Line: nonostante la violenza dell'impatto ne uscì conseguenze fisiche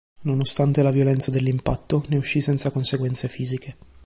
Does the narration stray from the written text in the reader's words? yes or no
yes